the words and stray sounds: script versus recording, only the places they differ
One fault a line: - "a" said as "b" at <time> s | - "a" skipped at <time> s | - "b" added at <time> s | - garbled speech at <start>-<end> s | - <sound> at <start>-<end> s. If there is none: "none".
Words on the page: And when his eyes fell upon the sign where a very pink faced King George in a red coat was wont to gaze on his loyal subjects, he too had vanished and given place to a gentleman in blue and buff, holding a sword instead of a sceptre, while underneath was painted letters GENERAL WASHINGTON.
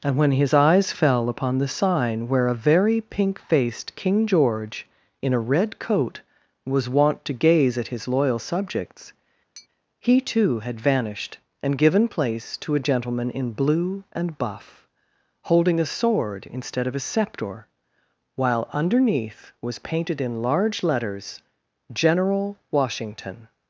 - "on" said as "at" at 7.8 s
- tap at 9.6-9.7 s
- "in large" added at 20.2 s